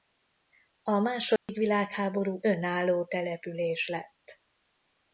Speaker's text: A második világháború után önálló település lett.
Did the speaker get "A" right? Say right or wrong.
right